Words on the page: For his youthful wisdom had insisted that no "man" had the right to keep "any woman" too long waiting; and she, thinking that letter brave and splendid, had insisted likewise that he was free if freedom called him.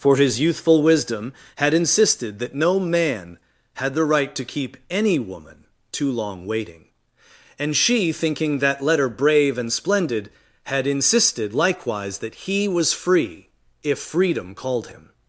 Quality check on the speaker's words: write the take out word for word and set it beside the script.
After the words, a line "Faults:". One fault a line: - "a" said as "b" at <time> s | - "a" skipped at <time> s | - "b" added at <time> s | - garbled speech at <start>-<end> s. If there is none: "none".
For his youthful wisdom had insisted that no "man" had the right to keep "any woman" too long waiting; and she, thinking that letter brave and splendid, had insisted likewise that he was free if freedom called him.
Faults:
none